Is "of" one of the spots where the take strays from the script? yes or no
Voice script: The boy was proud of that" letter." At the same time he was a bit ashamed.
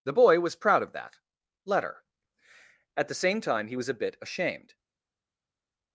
no